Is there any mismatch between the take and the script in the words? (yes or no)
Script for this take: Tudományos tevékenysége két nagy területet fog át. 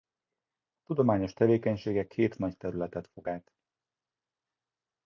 no